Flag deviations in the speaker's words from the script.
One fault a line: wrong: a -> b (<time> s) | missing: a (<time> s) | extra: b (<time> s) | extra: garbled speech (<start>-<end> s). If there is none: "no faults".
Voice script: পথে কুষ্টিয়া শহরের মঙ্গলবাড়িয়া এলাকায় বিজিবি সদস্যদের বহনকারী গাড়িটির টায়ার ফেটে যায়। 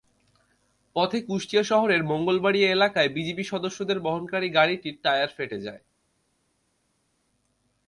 no faults